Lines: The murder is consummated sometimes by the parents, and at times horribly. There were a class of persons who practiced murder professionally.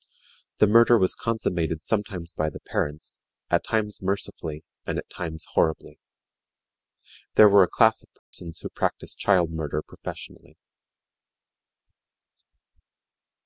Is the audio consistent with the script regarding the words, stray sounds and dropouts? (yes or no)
no